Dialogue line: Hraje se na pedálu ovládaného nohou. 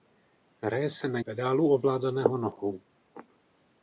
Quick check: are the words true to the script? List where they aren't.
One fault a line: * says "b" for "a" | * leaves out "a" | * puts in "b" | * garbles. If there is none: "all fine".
all fine